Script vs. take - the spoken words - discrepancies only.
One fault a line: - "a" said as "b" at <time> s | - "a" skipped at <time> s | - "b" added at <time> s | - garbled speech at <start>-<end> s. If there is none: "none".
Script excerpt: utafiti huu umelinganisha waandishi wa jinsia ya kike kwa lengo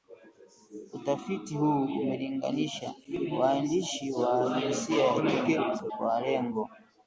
none